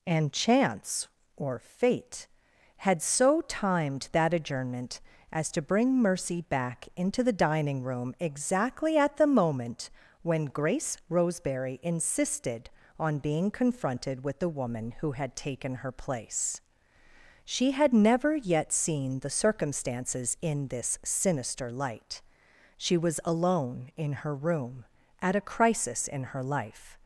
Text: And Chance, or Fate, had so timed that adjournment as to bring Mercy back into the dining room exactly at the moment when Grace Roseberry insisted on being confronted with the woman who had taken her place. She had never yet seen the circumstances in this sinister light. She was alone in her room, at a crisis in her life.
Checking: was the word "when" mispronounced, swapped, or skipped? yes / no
no